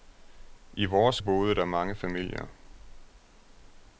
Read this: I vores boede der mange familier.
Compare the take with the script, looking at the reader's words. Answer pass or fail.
pass